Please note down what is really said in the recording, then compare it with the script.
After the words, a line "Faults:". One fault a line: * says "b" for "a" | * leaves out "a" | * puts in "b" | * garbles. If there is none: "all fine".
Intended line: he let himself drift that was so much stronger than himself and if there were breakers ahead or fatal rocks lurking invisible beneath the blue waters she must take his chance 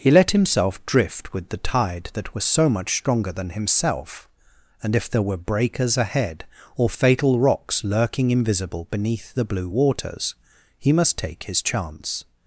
he let himself drift with the tide that was so much stronger than himself and if there were breakers ahead or fatal rocks lurking invisible beneath the blue waters he must take his chance
Faults:
* puts in "with the tide"
* says "he" for "she"